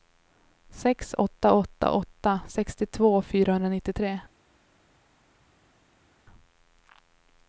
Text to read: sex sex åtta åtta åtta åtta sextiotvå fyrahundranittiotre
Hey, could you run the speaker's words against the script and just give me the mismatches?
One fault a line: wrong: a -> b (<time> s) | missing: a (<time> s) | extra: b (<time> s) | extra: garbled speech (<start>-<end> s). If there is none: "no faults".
missing: sex åtta (1.1 s)